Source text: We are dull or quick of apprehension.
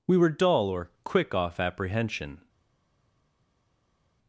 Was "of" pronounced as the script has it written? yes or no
no